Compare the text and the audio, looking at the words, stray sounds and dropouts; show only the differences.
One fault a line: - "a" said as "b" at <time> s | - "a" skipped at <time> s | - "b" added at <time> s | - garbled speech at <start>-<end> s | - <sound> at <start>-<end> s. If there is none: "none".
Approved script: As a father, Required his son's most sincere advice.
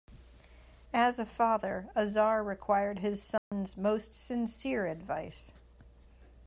- "Azar" added at 1.9 s
- dropout at 3.4-3.5 s